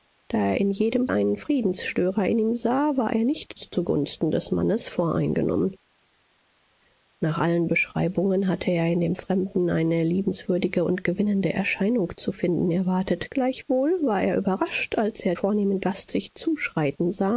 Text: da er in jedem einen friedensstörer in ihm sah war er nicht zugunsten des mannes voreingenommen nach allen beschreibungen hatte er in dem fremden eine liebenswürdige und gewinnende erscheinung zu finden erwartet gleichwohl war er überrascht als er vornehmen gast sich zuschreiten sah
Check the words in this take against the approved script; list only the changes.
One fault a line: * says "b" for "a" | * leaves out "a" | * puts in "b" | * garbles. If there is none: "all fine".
all fine